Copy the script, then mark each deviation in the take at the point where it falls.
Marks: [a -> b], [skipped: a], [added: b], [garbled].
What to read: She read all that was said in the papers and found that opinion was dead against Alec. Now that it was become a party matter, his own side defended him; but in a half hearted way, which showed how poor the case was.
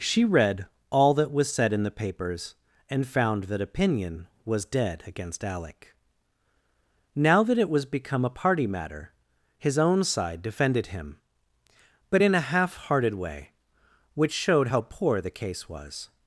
She read all that was said in the papers and found that opinion was dead against Alec. Now that it was become a party matter, his own side defended him; but in a half hearted way, which showed how poor the case was.